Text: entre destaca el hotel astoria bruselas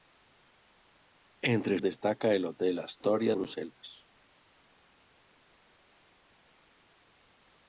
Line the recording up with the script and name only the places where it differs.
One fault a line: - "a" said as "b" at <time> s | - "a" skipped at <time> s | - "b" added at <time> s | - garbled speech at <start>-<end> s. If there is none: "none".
none